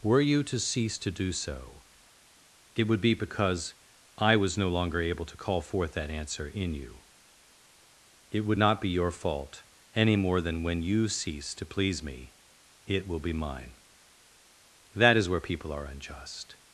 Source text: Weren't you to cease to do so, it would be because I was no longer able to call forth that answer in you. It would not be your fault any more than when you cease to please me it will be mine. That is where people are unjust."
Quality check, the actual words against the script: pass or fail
fail